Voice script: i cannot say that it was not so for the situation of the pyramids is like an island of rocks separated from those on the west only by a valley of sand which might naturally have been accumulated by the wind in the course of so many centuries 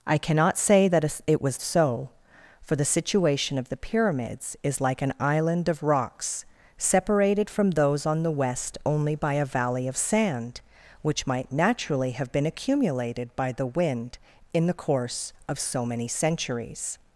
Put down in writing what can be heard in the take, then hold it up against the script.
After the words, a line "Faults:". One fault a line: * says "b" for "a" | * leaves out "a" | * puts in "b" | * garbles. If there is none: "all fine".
i cannot say that it was so for the situation of the pyramids is like an island of rocks separated from those on the west only by a valley of sand which might naturally have been accumulated by the wind in the course of so many centuries
Faults:
* leaves out "not"